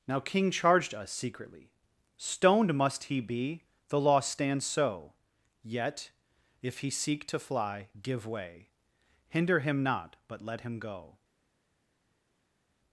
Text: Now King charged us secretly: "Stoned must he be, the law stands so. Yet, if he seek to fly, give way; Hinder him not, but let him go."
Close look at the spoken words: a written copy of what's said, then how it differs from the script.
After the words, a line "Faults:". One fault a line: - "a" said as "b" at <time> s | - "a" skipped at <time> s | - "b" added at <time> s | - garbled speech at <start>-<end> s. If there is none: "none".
Now King charged us secretly: "Stoned must he be, the law stands so. Yet, if he seek to fly, give way; Hinder him not, but let him go."
Faults:
none